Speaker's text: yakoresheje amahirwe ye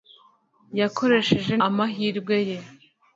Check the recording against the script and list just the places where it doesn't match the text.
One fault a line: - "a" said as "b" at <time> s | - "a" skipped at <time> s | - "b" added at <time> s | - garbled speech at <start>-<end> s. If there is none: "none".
none